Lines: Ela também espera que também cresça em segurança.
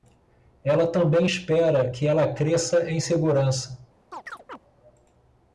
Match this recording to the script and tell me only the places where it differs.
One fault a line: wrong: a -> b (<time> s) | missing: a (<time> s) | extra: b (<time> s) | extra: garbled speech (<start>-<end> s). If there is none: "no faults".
wrong: também -> ela (2.1 s)